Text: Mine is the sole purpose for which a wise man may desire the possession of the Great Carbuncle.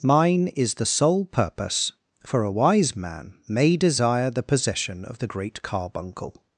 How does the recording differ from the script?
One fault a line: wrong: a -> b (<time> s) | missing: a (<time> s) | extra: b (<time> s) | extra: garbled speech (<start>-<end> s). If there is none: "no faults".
missing: which (2.4 s)